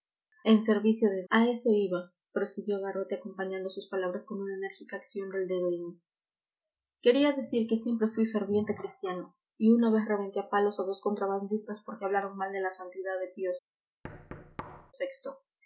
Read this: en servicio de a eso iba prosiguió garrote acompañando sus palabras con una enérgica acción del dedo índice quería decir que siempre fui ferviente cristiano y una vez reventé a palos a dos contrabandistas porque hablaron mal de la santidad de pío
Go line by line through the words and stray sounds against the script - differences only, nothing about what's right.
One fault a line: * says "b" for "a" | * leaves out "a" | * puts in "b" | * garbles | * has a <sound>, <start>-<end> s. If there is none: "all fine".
* has a thud, 14.0-14.9 s